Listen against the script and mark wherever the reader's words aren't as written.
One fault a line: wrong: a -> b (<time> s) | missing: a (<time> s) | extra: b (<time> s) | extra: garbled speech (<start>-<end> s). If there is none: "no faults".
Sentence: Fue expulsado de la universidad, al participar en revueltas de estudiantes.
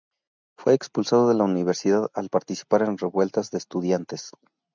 no faults